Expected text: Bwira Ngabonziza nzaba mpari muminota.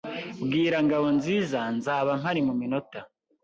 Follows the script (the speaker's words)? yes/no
yes